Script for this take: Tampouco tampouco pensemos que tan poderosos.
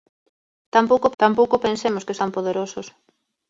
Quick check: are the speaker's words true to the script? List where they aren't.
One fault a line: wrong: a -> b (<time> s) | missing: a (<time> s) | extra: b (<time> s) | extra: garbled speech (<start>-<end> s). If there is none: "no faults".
no faults